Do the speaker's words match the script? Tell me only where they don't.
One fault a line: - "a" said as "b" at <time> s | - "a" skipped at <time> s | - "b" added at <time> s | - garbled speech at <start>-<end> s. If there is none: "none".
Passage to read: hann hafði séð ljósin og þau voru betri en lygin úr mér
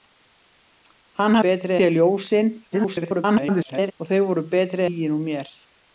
- "hafði" said as "betri" at 1.5 s
- garbled speech at 2.7-3.9 s
- "en" skipped at 4.9 s